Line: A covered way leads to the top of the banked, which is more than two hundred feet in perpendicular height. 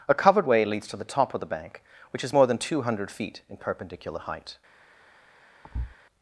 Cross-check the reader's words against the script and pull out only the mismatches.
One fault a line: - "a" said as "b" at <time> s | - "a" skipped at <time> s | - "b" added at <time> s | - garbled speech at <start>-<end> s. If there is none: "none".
- "banked" said as "bank" at 1.5 s